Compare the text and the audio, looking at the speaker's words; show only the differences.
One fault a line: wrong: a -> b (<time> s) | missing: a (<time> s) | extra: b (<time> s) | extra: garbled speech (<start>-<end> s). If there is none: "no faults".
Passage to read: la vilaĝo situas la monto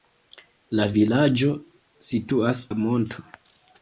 no faults